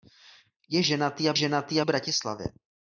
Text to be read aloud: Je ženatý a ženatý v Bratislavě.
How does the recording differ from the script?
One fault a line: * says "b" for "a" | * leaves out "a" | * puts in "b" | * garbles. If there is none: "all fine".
all fine